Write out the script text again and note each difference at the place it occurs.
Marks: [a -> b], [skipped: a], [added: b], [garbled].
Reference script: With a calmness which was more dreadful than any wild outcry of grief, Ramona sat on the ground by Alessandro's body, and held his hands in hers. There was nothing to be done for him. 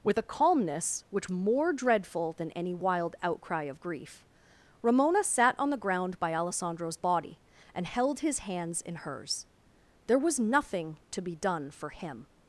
With a calmness which [skipped: was] more dreadful than any wild outcry of grief, Ramona sat on the ground by Alessandro's body, and held his hands in hers. There was nothing to be done for him.